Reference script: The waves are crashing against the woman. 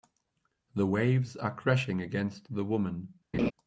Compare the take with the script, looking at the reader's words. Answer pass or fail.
pass